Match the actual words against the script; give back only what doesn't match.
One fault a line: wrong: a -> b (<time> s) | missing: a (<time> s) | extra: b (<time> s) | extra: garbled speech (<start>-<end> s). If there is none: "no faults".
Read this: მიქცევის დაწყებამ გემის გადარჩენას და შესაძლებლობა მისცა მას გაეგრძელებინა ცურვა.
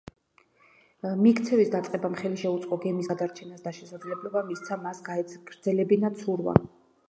extra: ხელი შეუწყო (2.2 s)